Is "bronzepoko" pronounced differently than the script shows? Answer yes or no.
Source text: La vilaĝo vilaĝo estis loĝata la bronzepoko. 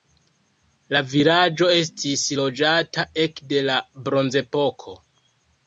no